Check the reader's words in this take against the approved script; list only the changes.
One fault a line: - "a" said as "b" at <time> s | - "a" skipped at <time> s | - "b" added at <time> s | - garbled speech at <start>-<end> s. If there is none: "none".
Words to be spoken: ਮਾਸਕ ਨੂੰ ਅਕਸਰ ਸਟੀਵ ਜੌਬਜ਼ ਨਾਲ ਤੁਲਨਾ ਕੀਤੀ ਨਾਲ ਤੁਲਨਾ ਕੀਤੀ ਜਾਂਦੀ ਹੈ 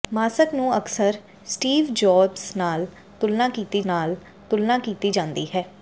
none